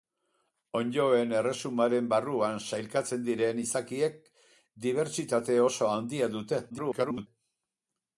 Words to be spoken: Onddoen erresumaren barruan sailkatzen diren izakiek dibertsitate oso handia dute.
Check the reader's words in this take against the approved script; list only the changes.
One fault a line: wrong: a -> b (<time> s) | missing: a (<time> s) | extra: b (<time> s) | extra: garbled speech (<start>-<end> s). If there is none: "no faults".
extra: garbled speech (6.7-7.3 s)